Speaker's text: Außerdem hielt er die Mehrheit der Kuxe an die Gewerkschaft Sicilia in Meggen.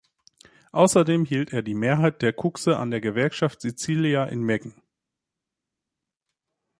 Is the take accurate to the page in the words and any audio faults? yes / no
no